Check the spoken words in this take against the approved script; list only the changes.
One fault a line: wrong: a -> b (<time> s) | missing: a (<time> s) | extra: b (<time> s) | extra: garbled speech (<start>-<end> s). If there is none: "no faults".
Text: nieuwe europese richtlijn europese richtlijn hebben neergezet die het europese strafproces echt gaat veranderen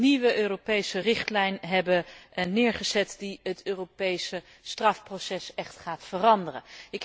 missing: europese richtlijn (1.6 s)